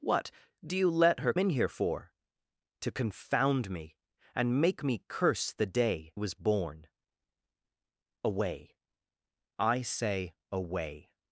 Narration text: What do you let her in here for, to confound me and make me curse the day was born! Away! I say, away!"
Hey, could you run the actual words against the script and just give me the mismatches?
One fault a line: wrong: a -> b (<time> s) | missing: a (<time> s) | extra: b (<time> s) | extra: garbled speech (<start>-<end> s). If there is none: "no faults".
no faults